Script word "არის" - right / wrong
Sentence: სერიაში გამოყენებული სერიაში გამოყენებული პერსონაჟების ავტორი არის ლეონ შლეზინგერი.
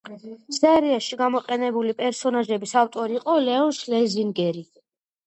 wrong